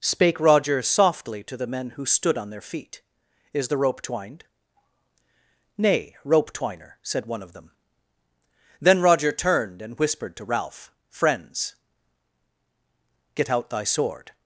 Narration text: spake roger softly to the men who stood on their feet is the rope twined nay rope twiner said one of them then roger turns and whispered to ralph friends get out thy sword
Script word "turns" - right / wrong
wrong